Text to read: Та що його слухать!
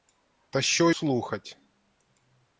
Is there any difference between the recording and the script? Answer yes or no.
yes